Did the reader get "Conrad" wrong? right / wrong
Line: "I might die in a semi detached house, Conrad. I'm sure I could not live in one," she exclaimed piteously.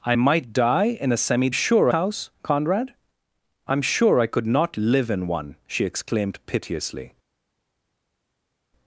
right